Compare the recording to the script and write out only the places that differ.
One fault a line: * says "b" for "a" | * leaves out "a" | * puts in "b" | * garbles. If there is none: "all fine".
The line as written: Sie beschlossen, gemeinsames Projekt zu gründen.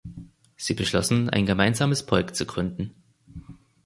* puts in "ein"